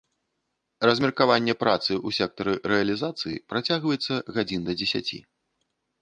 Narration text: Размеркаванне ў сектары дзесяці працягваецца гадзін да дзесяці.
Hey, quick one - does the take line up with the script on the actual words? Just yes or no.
no